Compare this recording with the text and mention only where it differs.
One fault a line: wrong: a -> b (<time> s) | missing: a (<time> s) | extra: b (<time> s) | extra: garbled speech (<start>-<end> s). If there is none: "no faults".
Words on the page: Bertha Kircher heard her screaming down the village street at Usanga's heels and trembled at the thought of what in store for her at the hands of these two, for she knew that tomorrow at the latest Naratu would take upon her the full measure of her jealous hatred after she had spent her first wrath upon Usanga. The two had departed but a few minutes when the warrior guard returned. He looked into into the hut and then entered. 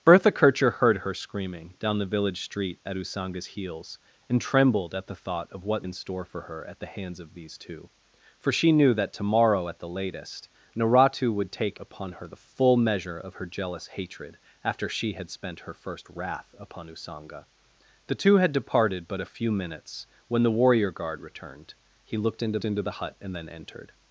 no faults